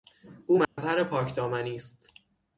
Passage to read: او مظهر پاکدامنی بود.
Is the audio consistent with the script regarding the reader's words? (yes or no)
no